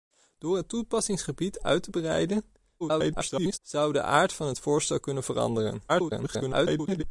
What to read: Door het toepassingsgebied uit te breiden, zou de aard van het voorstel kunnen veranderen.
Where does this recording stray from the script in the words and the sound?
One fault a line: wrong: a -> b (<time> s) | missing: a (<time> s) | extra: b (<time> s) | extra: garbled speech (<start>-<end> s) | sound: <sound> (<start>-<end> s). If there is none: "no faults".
extra: garbled speech (2.8-3.6 s)
extra: garbled speech (5.9-7.0 s)